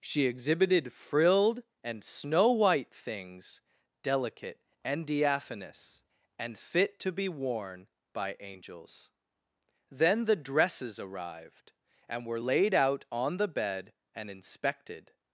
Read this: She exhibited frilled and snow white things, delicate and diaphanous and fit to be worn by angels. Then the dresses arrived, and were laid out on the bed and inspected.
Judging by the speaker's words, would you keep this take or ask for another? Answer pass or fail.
pass